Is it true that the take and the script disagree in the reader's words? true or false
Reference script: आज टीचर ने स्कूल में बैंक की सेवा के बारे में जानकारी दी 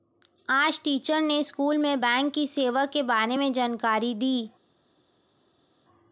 false